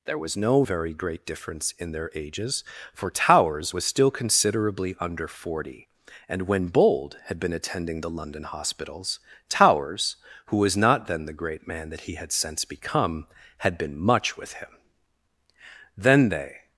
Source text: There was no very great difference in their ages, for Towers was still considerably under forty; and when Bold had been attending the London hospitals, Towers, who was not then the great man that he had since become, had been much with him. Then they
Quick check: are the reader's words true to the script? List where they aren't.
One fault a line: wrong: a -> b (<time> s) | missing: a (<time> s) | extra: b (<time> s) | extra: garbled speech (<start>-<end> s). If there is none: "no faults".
no faults